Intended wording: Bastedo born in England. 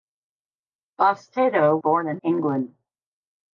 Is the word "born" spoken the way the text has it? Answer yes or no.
yes